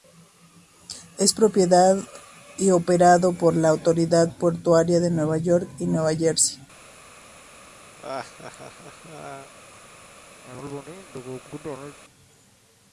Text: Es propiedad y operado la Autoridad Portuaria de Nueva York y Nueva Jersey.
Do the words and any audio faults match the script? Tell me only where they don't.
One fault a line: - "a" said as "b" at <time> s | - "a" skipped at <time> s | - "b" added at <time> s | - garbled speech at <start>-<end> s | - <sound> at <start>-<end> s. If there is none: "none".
- "por" added at 3.3 s
- laugh at 8.0-9.5 s
- cough at 10.4-12.0 s